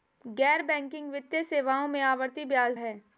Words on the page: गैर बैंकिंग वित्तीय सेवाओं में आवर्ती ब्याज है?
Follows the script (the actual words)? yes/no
yes